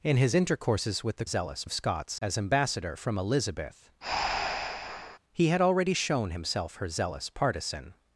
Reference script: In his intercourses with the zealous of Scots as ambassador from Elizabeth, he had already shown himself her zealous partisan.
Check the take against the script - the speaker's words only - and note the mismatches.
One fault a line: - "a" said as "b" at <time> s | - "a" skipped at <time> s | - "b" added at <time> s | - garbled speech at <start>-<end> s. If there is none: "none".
none